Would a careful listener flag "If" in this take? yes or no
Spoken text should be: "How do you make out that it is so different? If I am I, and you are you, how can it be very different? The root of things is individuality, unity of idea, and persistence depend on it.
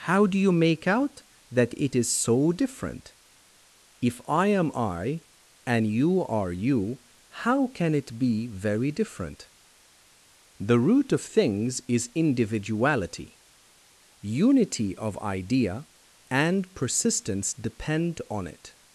no